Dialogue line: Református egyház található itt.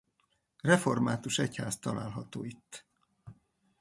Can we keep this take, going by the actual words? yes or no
yes